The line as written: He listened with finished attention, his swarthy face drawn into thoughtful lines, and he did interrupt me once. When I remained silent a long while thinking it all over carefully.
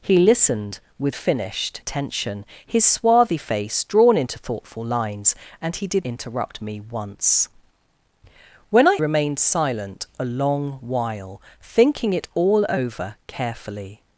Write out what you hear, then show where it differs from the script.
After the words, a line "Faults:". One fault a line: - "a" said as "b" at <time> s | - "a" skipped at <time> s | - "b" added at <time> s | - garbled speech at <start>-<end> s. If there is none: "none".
He listened with finished attention, his swarthy face drawn into thoughtful lines, and he did interrupt me once. When I remained silent a long while thinking it all over carefully.
Faults:
none